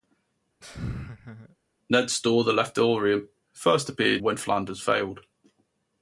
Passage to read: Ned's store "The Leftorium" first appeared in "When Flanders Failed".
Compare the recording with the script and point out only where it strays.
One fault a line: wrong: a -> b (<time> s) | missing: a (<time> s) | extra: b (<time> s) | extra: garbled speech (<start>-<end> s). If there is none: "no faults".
missing: in (4.2 s)